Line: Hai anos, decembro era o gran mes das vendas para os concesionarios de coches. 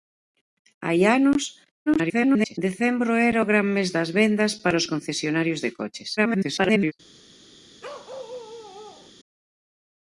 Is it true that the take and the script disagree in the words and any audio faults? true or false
true